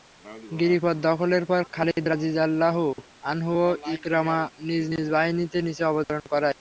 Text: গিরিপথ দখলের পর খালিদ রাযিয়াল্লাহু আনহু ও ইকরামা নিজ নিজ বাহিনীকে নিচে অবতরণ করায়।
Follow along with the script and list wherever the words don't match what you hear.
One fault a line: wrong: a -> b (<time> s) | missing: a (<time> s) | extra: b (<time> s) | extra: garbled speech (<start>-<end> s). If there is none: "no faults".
no faults